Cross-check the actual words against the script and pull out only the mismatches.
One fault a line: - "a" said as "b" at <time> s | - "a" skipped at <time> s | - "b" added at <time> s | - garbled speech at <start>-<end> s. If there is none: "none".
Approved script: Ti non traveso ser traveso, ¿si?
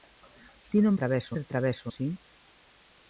none